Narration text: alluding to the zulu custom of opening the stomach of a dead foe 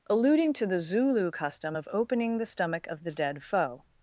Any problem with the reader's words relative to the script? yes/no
yes